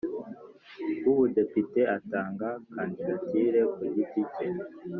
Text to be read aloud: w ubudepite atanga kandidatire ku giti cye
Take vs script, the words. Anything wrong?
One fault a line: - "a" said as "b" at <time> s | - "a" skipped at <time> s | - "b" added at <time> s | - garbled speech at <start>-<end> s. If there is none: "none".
none